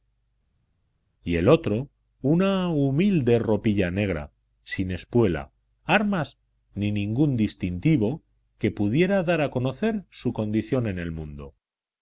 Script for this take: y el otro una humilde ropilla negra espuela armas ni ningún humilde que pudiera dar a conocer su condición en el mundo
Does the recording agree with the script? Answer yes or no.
no